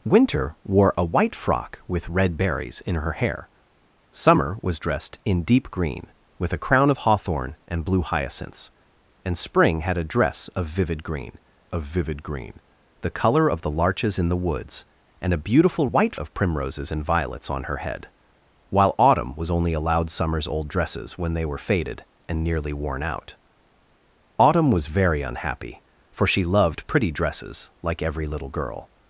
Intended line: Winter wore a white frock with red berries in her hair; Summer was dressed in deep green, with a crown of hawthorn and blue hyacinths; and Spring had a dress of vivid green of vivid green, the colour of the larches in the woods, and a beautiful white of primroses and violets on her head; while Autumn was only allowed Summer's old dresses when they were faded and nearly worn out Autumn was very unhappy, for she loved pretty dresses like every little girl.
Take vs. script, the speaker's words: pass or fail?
pass